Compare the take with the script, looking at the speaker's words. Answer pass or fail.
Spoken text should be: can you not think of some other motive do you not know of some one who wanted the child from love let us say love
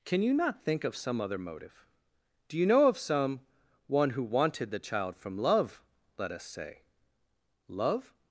fail